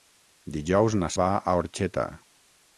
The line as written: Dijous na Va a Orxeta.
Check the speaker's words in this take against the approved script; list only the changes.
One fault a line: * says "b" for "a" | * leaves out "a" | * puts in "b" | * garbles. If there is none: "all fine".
all fine